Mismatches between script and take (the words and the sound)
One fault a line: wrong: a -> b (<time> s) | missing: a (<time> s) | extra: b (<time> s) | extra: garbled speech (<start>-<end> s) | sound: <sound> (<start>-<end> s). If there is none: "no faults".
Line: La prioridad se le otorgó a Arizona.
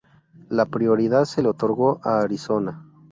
no faults